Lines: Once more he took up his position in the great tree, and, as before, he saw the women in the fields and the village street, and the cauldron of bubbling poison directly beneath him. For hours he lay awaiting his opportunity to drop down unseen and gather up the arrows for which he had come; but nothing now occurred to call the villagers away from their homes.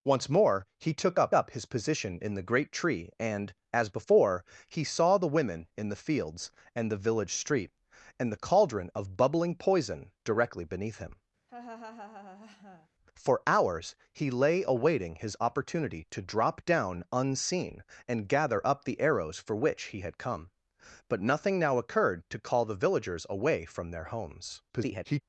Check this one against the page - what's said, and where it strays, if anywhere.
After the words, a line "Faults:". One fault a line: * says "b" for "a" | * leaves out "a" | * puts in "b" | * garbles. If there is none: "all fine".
Once more he took up up his position in the great tree, and, as before, he saw the women in the fields and the village street, and the cauldron of bubbling poison directly beneath him. For hours he lay awaiting his opportunity to drop down unseen and gather up the arrows for which he had come; but nothing now occurred to call the villagers away from their homes. [garbled]
Faults:
* puts in "up"
* garbles